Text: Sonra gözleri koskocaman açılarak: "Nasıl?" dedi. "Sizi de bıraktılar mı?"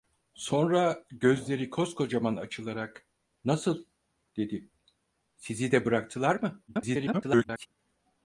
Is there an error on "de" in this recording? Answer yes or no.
no